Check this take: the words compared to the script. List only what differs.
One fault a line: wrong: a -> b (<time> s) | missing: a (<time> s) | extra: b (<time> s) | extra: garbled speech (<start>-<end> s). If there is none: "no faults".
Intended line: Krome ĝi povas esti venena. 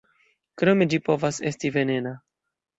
no faults